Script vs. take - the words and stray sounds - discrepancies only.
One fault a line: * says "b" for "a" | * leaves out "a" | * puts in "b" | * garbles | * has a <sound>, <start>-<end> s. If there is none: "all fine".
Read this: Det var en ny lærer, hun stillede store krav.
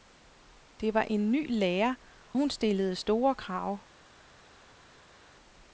all fine